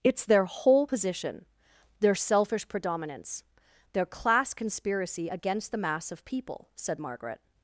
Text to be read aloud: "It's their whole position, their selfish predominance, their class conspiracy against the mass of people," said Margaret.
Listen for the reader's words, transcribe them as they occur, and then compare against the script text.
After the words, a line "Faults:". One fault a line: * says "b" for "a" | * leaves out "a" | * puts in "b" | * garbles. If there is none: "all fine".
"It's their whole position, their selfish predominance, their class conspiracy against the mass of people," said Margaret.
Faults:
all fine